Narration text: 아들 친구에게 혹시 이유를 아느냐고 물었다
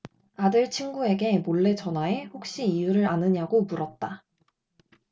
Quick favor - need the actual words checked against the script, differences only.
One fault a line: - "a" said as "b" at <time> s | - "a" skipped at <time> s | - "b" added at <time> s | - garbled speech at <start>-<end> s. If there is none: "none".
- "몰래 전화해" added at 1.4 s